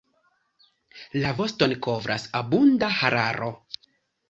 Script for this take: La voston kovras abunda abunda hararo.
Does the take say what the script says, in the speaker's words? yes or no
no